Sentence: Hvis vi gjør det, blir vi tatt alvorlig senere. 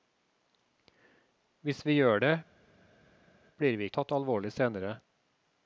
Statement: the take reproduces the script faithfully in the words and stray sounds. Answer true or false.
true